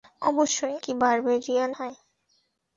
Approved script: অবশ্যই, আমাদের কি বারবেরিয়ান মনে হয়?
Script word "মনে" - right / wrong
wrong